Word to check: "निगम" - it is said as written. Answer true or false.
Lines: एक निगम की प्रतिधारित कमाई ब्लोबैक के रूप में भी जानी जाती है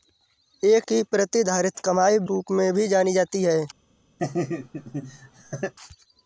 false